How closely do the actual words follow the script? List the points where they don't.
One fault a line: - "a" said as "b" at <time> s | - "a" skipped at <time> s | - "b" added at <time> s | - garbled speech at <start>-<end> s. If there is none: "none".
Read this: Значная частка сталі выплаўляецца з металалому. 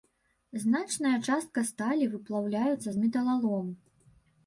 none